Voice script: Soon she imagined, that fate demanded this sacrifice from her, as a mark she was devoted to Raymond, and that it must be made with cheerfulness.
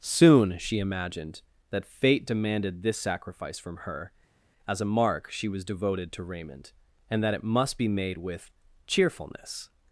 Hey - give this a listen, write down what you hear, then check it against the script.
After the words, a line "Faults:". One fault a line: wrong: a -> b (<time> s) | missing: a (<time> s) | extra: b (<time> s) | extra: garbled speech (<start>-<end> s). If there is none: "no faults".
Soon she imagined, that fate demanded this sacrifice from her, as a mark she was devoted to Raymond, and that it must be made with cheerfulness.
Faults:
no faults